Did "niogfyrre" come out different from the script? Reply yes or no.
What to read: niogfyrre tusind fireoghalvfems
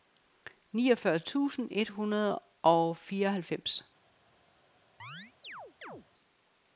no